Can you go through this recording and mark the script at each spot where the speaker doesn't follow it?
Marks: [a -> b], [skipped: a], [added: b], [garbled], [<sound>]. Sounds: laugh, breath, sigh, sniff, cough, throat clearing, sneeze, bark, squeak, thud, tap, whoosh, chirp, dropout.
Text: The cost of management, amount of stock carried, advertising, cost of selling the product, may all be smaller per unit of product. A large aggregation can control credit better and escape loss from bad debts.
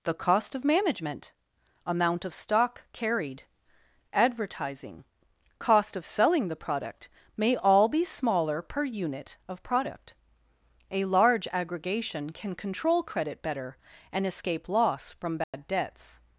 The cost of management, amount of stock carried, advertising, cost of selling the product, may all be smaller per unit of product. A large aggregation can control credit better and escape loss from bad [dropout] debts.